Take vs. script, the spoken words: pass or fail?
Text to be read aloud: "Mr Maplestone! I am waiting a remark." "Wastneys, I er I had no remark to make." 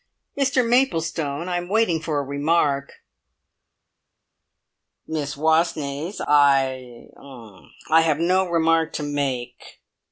fail